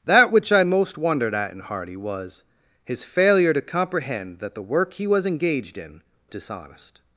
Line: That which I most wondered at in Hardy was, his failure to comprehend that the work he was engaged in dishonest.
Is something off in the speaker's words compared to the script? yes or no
no